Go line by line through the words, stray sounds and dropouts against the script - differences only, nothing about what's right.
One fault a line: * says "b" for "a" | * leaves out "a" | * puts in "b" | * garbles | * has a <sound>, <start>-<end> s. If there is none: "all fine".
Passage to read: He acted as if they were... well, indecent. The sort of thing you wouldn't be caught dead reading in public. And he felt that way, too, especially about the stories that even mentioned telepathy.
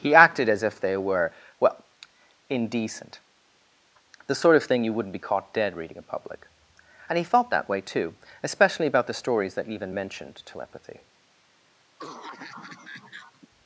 * has a cough, 12.0-13.5 s